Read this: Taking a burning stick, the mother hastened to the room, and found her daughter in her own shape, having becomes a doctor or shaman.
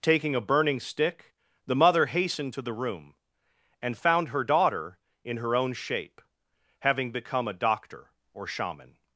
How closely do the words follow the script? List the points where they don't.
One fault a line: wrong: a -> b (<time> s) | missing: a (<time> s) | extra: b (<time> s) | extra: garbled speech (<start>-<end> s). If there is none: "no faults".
wrong: becomes -> become (7.1 s)